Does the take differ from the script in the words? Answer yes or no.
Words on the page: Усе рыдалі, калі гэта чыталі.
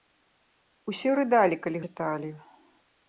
yes